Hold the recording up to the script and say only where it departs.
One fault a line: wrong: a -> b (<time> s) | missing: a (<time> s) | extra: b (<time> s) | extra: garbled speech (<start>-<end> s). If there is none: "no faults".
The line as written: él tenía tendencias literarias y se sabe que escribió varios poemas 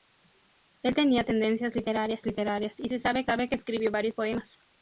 extra: literarias (2.3 s)
extra: sabe (3.2 s)